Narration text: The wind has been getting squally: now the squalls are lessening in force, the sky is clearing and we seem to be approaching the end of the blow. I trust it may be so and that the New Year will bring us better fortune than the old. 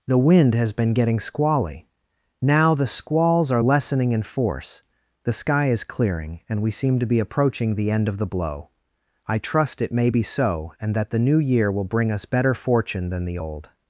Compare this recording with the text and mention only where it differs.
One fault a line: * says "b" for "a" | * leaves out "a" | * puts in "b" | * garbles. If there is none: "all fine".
all fine